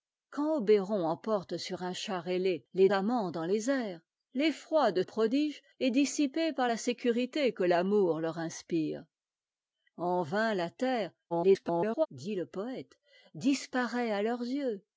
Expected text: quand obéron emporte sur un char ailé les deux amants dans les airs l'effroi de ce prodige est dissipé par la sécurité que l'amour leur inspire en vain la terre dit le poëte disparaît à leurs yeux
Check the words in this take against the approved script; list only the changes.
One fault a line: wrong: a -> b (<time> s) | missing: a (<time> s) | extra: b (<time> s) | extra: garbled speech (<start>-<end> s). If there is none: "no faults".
missing: deux (2.9 s)
missing: ce (5.0 s)
extra: garbled speech (11.3-12.1 s)